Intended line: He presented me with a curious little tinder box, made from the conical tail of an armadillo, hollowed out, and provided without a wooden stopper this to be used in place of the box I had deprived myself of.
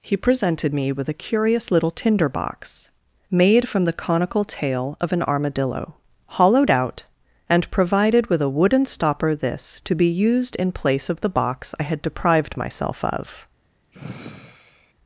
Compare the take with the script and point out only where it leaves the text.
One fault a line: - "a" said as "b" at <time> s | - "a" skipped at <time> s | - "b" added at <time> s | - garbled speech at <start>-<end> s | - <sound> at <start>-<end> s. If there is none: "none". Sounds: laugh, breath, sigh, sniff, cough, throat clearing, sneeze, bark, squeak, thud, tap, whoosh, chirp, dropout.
- "without" said as "with" at 8.3 s
- sigh at 13.9-14.9 s